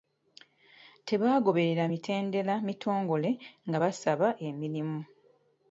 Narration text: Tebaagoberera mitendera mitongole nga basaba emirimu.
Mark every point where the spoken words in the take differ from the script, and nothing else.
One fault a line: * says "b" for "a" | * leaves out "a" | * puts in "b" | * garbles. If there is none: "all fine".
all fine